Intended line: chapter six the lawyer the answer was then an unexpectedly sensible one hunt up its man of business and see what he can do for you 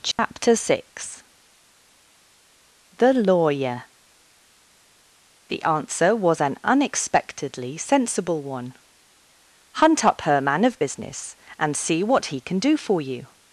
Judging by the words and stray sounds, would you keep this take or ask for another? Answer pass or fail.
fail